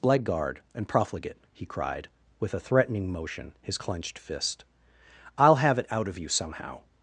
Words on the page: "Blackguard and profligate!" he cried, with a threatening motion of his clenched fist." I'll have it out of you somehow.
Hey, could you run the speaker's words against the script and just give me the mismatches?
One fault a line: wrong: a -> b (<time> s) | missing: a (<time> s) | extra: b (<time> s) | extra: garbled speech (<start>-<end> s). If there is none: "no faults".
missing: of (3.5 s)